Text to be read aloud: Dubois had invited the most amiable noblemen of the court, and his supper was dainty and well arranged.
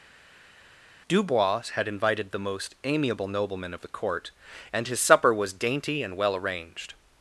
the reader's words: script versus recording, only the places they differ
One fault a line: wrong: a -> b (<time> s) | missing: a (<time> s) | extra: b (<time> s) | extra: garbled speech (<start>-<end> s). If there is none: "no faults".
no faults